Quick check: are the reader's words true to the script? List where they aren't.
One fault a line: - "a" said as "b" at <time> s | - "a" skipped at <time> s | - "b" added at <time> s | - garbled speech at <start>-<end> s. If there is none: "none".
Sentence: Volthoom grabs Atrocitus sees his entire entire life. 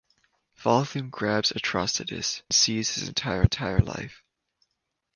none